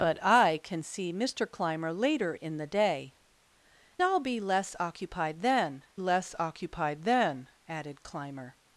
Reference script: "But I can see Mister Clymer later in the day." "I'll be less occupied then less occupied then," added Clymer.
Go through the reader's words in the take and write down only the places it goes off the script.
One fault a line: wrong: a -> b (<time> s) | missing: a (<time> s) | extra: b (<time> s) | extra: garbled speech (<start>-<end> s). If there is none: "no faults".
no faults